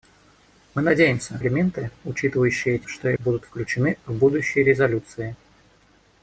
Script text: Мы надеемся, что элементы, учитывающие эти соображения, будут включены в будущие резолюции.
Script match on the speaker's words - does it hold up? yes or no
no